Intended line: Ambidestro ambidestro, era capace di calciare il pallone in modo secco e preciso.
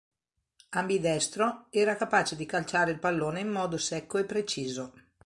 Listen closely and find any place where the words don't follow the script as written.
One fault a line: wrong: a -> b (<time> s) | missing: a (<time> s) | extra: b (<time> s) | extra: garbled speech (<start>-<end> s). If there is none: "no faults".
missing: ambidestro (1.7 s)